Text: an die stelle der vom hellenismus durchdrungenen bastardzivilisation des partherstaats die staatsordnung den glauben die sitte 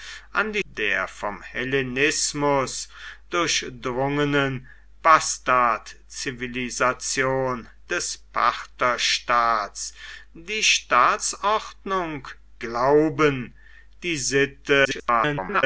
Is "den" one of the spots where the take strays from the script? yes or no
yes